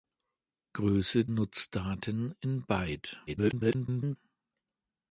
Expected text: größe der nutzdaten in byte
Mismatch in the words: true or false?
true